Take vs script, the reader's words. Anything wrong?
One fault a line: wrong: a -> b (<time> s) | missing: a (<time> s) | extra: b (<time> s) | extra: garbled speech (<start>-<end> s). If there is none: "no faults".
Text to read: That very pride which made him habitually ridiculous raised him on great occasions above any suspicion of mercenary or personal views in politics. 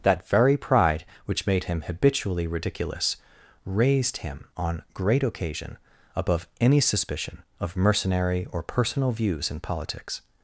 wrong: occasions -> occasion (5.2 s)